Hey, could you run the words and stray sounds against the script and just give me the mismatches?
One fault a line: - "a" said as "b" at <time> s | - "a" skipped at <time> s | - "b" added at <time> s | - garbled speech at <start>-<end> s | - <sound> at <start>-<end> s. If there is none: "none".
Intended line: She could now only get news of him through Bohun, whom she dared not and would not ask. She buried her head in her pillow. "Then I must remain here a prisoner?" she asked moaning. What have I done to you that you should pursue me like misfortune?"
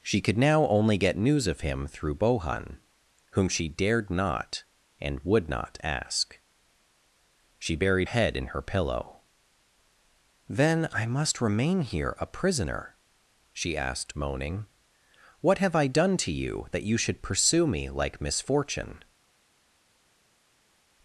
- "her" skipped at 8.1 s